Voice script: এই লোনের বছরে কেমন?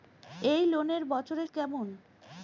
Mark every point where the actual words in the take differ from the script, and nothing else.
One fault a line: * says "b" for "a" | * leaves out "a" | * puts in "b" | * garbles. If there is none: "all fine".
all fine